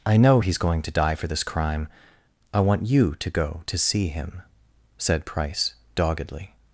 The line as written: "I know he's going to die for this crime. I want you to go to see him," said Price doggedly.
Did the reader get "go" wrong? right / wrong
right